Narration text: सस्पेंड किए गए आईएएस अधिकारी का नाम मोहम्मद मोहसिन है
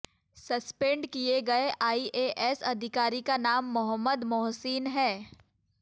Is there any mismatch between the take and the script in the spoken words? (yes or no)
no